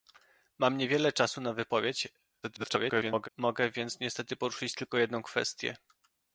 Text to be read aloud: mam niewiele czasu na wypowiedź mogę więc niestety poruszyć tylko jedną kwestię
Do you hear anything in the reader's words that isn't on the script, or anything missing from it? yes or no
yes